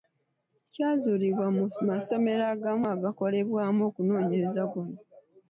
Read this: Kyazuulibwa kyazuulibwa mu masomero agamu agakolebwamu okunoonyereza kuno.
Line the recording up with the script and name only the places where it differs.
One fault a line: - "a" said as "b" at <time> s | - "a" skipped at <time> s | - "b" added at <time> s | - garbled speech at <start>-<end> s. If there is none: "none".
- "kyazuulibwa" skipped at 1.5 s